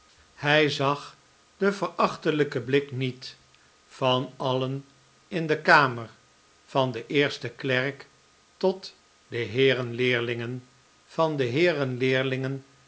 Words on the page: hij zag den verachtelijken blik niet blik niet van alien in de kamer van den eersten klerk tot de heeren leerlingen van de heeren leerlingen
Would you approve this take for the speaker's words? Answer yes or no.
no